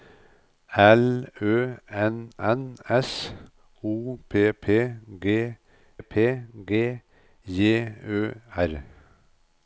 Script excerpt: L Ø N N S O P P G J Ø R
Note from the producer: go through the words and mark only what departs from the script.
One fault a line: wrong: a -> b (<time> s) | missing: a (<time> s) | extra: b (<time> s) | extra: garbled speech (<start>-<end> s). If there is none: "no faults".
extra: P G (6.0 s)